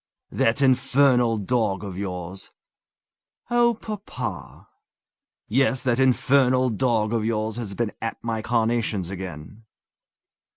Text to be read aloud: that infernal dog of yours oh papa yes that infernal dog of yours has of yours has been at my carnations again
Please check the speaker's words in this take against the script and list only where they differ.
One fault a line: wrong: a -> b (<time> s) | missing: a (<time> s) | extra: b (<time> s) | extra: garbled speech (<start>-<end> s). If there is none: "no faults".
missing: of yours has (7.8 s)